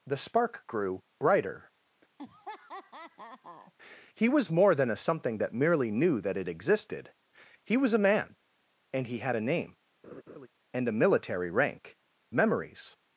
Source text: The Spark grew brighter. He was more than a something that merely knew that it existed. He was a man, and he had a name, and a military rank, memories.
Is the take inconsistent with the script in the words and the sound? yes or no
yes